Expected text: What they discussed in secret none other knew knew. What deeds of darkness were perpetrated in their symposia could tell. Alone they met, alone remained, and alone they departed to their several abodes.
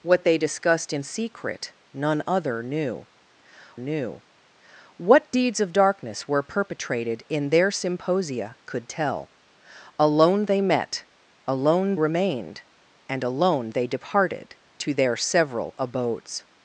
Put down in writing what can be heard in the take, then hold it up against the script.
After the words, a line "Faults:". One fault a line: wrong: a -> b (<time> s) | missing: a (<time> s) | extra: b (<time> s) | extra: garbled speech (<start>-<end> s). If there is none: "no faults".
What they discussed in secret none other knew knew. What deeds of darkness were perpetrated in their symposia could tell. Alone they met, alone remained, and alone they departed to their several abodes.
Faults:
no faults